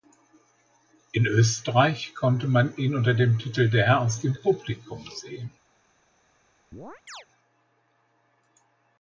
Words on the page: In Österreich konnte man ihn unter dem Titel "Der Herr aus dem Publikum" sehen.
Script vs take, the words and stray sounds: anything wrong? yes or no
yes